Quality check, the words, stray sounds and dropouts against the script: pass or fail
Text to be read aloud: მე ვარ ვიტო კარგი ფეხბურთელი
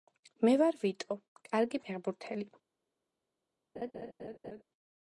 fail